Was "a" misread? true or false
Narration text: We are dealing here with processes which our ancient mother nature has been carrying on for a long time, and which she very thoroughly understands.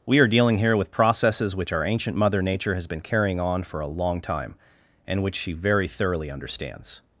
false